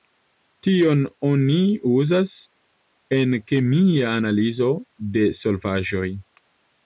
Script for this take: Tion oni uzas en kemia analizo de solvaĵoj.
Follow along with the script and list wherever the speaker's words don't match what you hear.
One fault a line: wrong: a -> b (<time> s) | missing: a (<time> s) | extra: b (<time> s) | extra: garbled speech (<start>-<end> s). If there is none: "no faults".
no faults